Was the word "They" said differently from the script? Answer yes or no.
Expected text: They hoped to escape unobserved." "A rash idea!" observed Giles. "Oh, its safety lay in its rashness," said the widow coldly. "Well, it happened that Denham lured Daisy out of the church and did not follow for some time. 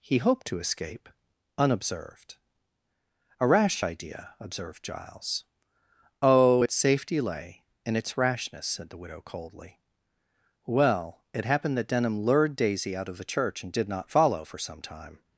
yes